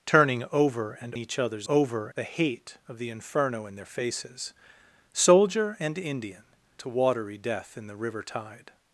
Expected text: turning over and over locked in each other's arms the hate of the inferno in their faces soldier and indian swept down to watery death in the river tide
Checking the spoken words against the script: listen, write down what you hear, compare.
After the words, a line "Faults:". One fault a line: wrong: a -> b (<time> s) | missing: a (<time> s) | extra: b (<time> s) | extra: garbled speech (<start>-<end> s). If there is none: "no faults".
turning over and each other's over the hate of the inferno in their faces soldier and indian to watery death in the river tide
Faults:
missing: over locked in (1.1 s)
wrong: arms -> over (1.7 s)
missing: swept down (6.4 s)